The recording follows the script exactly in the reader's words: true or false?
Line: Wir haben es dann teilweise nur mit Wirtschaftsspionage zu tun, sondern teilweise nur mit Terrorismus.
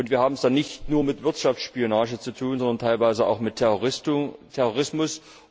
false